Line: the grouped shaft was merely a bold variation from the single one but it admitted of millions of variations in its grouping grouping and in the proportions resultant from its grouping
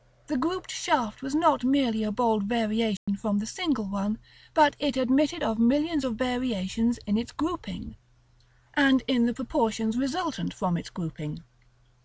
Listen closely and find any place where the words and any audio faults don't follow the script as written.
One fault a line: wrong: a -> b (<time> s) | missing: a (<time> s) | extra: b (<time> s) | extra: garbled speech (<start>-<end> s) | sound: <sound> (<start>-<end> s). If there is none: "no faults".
extra: not (1.4 s)
sound: dropout (3.0-3.1 s)
missing: grouping (8.0 s)